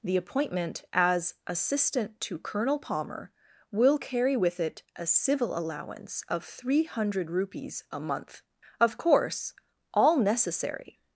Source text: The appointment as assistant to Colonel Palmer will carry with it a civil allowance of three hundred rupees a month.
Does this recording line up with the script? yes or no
no